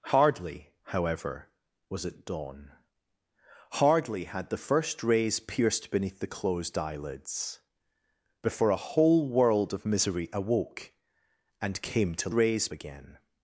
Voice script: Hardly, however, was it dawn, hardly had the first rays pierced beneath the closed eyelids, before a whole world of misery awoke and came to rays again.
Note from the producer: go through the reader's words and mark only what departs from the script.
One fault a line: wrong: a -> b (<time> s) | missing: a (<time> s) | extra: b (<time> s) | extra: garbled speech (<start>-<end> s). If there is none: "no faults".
no faults